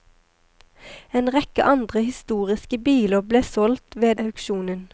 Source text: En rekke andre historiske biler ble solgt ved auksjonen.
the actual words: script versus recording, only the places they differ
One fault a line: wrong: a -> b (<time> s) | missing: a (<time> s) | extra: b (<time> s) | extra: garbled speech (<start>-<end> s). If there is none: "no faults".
no faults